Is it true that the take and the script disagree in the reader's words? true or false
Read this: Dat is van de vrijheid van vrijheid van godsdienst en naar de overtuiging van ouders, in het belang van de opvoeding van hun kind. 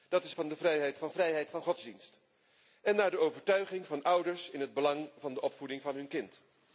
false